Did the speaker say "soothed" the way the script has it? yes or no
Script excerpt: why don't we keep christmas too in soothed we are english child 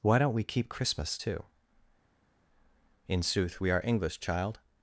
no